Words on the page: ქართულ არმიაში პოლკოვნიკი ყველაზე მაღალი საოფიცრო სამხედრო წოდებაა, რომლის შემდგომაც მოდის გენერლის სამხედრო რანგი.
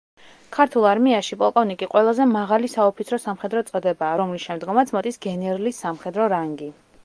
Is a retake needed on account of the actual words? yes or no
no